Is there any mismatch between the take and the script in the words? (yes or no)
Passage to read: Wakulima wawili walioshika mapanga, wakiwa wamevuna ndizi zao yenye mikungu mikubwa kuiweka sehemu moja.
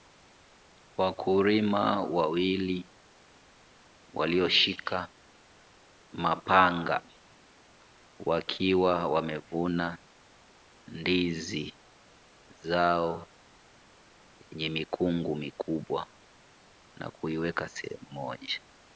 yes